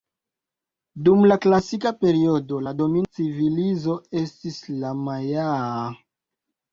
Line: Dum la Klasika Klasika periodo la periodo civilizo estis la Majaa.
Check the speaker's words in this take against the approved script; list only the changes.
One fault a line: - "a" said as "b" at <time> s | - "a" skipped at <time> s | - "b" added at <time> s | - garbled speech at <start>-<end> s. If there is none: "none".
- "Klasika" skipped at 1.9 s
- "periodo" said as "domina" at 2.8 s